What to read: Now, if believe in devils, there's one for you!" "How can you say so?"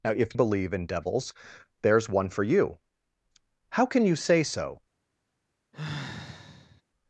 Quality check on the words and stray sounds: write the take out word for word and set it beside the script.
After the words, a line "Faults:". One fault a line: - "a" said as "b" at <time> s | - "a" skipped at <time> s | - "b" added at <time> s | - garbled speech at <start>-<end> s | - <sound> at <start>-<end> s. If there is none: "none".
Now, if believe in devils, there's one for you!" "How can you say so?"
Faults:
- sigh at 5.7-6.8 s